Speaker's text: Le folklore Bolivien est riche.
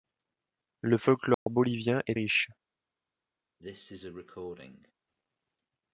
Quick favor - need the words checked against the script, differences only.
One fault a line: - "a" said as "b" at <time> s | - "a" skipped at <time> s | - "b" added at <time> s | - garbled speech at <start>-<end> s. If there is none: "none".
none